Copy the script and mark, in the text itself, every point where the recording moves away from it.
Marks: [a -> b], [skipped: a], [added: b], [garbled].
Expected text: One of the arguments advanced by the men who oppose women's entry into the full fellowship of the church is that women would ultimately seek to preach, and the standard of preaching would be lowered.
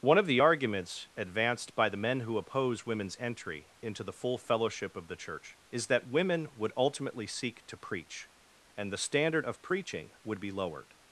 One of the arguments advanced by the men who oppose women's entry into the full fellowship of the church is that women would ultimately seek to preach, and the standard of preaching would be lowered.